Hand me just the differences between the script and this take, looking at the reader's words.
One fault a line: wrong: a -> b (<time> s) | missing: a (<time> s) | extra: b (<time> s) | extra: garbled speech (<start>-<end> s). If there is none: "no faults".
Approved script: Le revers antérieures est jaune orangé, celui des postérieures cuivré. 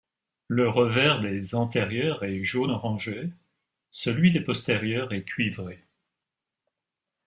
extra: des (1.2 s)
extra: est (5.1 s)